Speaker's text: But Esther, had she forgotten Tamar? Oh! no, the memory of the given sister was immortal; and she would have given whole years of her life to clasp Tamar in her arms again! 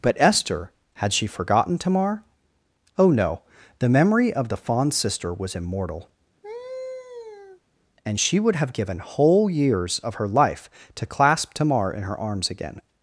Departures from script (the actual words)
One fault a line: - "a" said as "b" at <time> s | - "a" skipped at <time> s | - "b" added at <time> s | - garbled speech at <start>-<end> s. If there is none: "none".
- "given" said as "fond" at 4.6 s